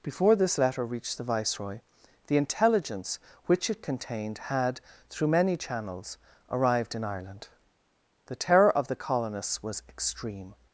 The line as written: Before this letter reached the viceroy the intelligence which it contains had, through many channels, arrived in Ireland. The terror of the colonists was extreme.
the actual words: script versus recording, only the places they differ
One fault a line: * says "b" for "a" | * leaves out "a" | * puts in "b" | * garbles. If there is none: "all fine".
* says "contained" for "contains"